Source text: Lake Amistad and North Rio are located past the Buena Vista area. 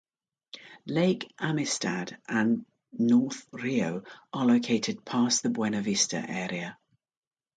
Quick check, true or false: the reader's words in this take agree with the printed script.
true